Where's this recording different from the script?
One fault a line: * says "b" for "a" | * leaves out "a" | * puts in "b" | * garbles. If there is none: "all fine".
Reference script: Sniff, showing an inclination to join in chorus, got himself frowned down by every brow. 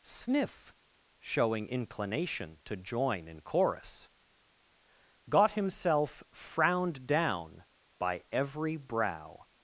* leaves out "an"